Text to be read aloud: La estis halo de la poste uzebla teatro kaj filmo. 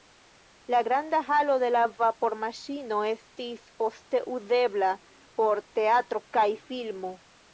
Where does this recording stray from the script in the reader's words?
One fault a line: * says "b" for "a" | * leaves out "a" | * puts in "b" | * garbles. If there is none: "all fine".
* says "granda" for "estis"
* puts in "vapormaŝino estis"
* puts in "por"